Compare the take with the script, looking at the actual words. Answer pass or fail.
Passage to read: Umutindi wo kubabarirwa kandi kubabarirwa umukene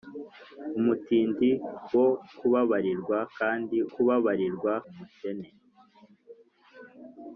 pass